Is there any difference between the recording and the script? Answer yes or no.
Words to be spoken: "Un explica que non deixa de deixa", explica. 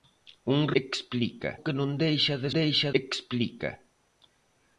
no